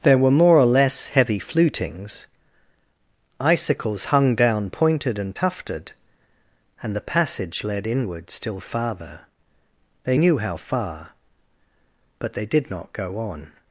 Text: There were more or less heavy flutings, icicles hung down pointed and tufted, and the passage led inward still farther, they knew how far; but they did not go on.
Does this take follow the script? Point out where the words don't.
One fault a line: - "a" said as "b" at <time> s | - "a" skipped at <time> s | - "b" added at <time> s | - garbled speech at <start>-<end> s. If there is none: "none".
none